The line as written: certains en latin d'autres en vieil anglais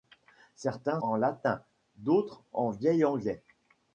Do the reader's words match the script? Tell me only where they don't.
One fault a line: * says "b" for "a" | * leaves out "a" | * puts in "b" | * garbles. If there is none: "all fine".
all fine